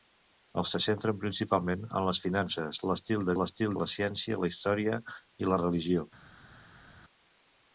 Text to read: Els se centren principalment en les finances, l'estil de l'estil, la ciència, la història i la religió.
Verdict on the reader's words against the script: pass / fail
pass